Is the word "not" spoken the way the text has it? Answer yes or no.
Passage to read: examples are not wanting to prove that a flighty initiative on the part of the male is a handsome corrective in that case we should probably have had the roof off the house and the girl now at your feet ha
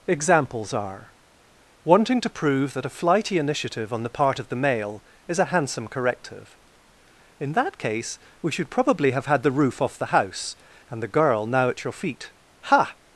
no